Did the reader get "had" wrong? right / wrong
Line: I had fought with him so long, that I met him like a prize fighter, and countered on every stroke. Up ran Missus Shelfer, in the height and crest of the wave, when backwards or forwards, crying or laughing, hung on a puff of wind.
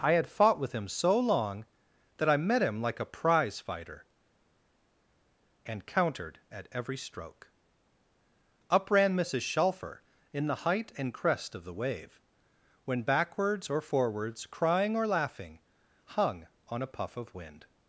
right